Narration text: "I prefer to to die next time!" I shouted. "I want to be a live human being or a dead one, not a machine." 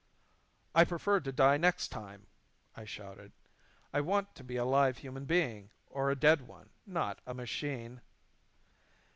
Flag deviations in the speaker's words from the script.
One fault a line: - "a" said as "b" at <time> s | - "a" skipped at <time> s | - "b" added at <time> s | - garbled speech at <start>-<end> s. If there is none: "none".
- "to" skipped at 1.3 s